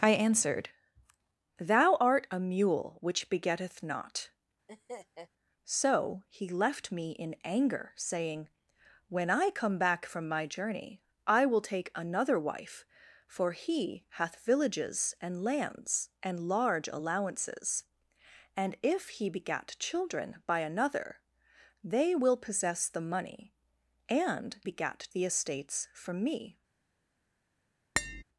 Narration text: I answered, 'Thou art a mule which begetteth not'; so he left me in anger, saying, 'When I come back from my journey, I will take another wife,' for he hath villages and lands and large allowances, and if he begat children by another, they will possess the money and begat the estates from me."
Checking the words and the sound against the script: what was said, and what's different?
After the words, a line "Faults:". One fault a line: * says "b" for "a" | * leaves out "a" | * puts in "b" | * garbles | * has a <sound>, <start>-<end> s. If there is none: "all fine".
I answered, 'Thou art a mule which begetteth not'; so he left me in anger, saying, 'When I come back from my journey, I will take another wife,' for he hath villages and lands and large allowances, and if he begat children by another, they will possess the money and begat the estates from me."
Faults:
* has a laugh, 4.7-5.3 s
* has a tap, 28.0-28.2 s